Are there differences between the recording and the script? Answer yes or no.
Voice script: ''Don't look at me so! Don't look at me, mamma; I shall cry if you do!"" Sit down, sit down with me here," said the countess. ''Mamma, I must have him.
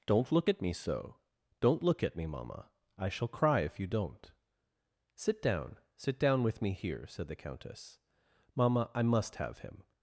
yes